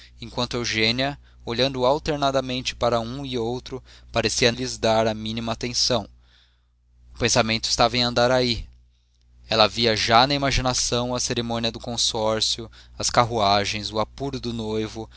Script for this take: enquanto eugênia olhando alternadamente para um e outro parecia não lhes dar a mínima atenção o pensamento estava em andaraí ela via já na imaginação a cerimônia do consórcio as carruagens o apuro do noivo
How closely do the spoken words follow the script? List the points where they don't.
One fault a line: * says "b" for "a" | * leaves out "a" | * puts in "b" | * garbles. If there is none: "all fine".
* leaves out "não"